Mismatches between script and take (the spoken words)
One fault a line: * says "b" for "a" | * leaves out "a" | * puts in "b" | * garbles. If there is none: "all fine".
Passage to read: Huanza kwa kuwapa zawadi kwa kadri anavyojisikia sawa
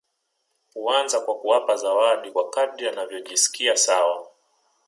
all fine